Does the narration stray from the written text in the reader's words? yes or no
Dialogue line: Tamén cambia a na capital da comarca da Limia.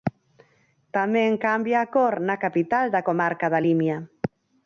yes